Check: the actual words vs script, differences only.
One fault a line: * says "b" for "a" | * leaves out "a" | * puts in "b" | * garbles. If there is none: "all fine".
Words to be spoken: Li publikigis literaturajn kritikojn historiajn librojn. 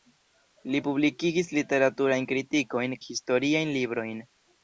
all fine